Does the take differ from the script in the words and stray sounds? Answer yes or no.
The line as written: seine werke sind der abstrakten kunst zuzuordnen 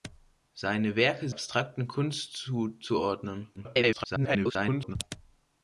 yes